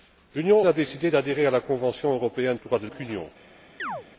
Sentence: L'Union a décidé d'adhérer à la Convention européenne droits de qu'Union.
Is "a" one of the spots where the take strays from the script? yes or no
no